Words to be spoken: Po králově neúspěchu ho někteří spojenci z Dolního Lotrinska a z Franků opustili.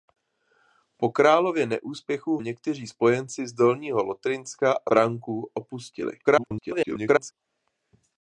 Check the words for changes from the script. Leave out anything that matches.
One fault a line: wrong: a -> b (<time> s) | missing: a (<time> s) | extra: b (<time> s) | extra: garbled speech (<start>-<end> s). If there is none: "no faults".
missing: ho (2.4 s)
missing: z (4.9 s)
extra: garbled speech (6.2-7.3 s)